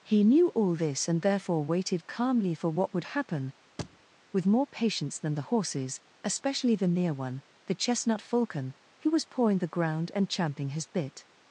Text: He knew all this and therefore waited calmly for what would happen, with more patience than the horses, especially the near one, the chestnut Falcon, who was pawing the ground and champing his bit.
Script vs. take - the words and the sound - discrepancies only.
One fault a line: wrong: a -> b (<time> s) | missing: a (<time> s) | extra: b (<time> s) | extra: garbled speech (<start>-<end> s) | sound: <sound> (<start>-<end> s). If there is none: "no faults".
sound: thud (3.8-4.0 s)